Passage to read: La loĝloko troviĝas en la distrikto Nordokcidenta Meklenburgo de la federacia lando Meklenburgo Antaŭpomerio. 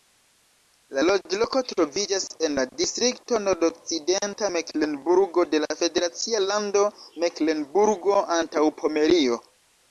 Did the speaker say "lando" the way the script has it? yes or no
yes